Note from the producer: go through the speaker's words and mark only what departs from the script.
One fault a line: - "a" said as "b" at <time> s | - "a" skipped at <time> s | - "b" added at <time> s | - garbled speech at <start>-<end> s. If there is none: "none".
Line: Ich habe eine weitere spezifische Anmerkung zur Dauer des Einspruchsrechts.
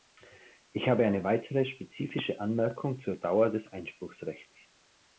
none